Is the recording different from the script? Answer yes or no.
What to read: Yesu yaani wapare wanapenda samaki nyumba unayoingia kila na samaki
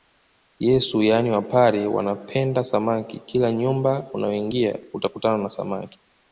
yes